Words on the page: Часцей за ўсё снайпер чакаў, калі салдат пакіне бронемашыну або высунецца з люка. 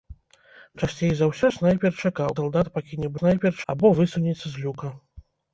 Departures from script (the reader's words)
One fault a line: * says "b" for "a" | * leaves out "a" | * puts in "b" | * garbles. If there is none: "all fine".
* leaves out "калі"
* says "снайпер" for "бронемашыну"